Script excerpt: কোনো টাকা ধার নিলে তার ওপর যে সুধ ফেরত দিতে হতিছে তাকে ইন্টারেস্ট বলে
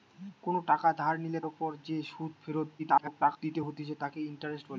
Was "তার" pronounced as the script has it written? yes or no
no